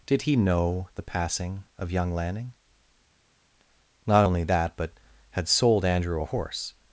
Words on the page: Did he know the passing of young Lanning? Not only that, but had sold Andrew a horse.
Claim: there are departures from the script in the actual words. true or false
false